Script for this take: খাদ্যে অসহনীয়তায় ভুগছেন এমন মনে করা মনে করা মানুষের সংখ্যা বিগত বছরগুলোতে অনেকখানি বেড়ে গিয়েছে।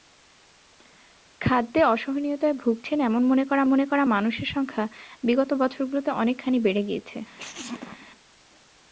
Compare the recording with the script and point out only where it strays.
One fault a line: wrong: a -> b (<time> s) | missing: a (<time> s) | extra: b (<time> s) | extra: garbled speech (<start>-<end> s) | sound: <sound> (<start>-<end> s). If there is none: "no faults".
sound: sneeze (7.4-8.1 s)